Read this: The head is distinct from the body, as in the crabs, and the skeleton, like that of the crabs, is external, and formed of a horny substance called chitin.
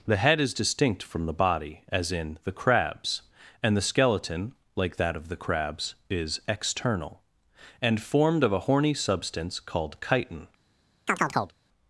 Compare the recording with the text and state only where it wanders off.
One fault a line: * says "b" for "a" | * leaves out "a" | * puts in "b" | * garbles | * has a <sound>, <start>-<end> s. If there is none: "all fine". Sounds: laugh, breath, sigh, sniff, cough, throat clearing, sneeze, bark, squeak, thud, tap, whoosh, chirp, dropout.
* has a chirp, 11.1-11.6 s